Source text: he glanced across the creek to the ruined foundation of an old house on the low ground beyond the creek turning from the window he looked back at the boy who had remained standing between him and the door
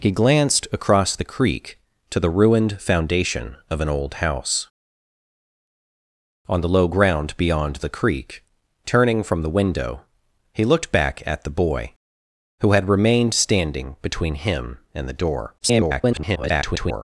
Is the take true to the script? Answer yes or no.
no